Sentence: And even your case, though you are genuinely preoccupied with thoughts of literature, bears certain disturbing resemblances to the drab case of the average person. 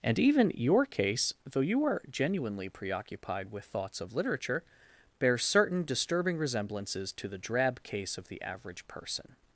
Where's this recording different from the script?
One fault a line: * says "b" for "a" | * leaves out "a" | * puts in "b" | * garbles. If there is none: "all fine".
all fine